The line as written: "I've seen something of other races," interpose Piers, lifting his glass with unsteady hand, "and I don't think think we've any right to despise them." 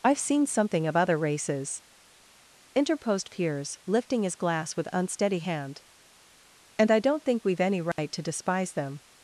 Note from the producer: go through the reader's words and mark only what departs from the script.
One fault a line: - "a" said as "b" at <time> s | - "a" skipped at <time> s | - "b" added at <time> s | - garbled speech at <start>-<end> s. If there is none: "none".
- "interpose" said as "interposed" at 2.8 s
- "think" skipped at 7.4 s